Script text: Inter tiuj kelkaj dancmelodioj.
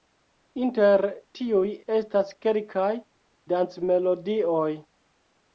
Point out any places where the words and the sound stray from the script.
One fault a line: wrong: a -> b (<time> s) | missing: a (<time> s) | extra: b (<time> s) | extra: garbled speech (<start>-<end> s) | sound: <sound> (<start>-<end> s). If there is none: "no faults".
extra: estas (2.0 s)